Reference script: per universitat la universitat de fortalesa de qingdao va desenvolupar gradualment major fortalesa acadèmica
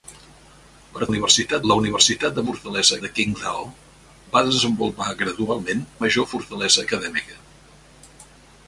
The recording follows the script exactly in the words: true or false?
true